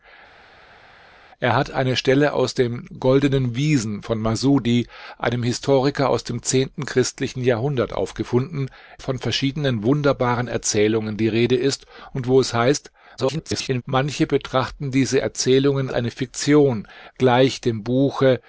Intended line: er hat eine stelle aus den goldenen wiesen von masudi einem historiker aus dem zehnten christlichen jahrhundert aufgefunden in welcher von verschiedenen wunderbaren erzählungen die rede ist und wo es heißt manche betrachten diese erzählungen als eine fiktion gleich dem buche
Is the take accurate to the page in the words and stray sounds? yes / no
no